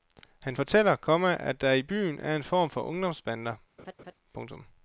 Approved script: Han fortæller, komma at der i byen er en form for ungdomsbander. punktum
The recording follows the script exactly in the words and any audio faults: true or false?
false